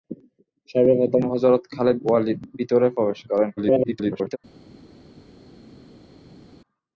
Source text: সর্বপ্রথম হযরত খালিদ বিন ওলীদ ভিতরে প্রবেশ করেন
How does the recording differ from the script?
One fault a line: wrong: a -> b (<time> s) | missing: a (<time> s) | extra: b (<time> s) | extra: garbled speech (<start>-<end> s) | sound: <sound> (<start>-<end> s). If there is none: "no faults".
missing: বিন (2.0 s)
extra: garbled speech (3.6-4.4 s)